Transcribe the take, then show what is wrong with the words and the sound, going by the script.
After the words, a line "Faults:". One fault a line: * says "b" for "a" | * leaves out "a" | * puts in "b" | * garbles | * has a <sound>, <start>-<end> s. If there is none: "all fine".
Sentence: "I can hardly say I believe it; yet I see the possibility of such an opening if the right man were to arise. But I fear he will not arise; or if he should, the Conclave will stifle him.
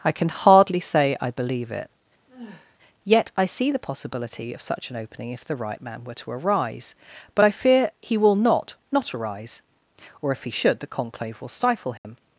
"I can hardly say I believe it; yet I see the possibility of such an opening if the right man were to arise. But I fear he will not not arise; or if he should, the Conclave will stifle him.
Faults:
* has a sigh, 2.3-2.8 s
* puts in "not"
* has a dropout, 12.0-12.0 s